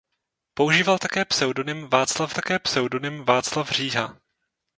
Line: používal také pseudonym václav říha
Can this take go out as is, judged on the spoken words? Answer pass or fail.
fail